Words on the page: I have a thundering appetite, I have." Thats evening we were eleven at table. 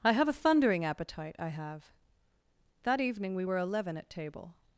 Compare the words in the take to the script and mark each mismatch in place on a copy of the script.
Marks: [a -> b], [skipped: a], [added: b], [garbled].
I have a thundering appetite, I have." [Thats -> That] evening we were eleven at table.